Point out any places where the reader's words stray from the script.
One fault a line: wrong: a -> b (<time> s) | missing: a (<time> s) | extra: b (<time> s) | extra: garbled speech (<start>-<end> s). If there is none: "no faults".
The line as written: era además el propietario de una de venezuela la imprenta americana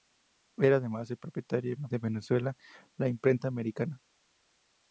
no faults